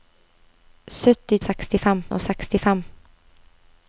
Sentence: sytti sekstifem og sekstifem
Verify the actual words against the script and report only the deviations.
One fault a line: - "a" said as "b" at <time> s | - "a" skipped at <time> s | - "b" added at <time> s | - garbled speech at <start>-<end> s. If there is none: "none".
none